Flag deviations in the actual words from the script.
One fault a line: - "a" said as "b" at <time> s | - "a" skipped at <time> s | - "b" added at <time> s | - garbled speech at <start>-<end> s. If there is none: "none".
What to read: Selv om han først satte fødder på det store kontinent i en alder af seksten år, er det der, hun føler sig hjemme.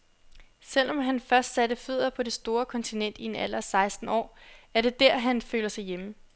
- "hun" said as "han" at 5.2 s